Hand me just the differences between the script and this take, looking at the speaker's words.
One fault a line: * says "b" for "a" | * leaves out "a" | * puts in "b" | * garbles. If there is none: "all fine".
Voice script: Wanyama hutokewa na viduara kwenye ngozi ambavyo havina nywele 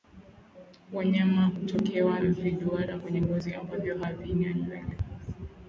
* leaves out "na"